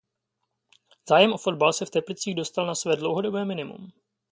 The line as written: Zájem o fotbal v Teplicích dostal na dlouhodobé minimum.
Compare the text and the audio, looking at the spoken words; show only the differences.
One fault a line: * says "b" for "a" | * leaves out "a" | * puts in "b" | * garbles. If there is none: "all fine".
* puts in "se"
* puts in "své"